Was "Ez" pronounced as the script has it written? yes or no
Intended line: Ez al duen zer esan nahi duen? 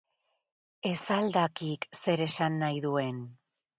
yes